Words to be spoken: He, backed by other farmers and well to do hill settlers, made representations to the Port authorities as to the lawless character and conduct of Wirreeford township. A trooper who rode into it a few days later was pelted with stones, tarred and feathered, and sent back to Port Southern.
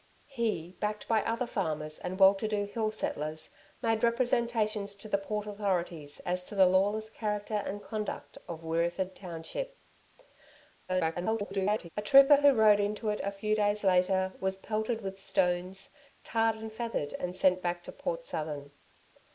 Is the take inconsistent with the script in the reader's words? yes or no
yes